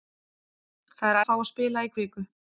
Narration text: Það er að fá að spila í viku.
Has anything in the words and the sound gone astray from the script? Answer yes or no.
no